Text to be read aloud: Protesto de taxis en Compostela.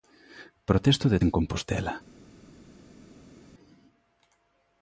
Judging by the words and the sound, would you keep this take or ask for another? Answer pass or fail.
fail